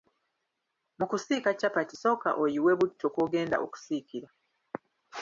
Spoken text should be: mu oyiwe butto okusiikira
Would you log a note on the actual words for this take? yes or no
yes